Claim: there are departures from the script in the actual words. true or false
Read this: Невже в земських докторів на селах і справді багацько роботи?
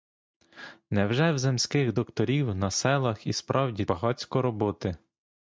false